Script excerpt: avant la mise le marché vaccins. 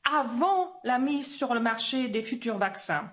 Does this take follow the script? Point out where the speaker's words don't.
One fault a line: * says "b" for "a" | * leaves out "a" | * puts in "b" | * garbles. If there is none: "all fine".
* puts in "sur"
* puts in "des futurs"